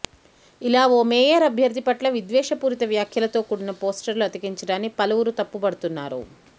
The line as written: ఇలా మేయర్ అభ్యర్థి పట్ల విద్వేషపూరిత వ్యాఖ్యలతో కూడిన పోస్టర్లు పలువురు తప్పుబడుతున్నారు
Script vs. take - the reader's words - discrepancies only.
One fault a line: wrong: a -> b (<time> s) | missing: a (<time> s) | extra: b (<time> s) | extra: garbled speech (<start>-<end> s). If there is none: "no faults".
extra: ఓ (0.9 s)
extra: అతికించడాన్ని (4.3 s)